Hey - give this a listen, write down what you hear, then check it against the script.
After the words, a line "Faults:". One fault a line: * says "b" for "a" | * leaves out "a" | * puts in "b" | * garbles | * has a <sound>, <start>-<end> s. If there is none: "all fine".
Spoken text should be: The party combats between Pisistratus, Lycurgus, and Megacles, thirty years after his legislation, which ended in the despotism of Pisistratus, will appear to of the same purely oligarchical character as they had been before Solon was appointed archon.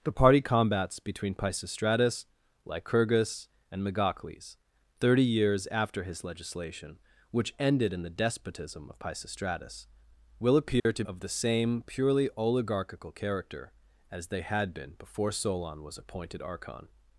The party combats between Pisistratus, Lycurgus, and Megacles, thirty years after his legislation, which ended in the despotism of Pisistratus, will appear to of the same purely oligarchical character as they had been before Solon was appointed archon.
Faults:
* has a dropout, 10.8-10.9 s